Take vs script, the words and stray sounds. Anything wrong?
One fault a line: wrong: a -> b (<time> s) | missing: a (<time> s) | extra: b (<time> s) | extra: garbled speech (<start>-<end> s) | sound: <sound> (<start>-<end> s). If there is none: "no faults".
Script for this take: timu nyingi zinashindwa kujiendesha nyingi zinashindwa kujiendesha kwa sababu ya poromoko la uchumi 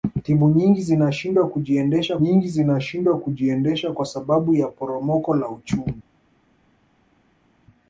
no faults